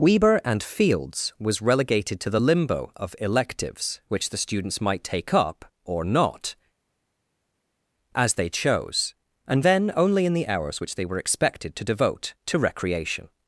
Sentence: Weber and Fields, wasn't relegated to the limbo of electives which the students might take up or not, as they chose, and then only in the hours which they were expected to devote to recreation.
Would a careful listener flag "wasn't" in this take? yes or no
yes